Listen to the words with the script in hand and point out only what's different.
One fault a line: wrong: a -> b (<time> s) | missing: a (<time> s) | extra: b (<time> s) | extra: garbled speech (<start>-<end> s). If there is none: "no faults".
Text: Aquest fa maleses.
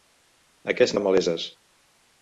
no faults